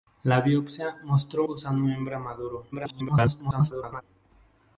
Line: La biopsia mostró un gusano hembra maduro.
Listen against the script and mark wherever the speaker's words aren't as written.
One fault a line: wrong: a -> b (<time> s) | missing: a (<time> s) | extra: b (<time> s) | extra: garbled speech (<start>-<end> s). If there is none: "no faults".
missing: un (1.4 s)
extra: garbled speech (2.7-4.0 s)